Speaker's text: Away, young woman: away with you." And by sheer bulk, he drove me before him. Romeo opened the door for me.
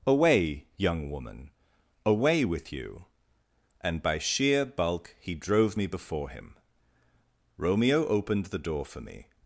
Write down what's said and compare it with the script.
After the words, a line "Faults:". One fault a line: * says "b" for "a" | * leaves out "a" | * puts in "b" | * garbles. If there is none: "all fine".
Away, young woman: away with you." And by sheer bulk, he drove me before him. Romeo opened the door for me.
Faults:
all fine